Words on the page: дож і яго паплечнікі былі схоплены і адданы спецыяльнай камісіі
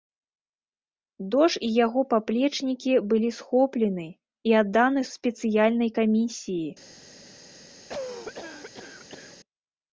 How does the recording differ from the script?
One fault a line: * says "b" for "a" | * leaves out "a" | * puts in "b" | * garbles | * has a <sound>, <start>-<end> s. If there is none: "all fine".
* has a cough, 7.9-9.4 s